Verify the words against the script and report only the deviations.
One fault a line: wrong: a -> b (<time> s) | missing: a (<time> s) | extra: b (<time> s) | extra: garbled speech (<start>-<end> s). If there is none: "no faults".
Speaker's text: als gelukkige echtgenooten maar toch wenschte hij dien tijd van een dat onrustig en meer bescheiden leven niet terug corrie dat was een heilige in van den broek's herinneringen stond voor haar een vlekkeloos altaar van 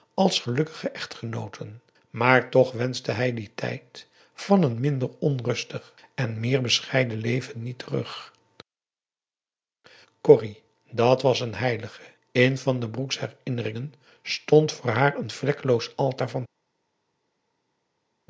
wrong: dat -> minder (4.8 s)